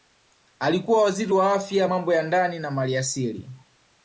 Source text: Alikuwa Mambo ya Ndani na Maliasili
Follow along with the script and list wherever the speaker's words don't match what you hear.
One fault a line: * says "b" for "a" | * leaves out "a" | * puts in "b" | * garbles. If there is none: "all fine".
* puts in "Waziri wa Afya"